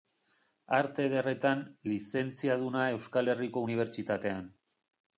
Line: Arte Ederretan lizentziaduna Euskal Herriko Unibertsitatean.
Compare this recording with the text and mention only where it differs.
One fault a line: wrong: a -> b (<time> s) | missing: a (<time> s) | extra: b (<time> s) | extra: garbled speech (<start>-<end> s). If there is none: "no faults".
no faults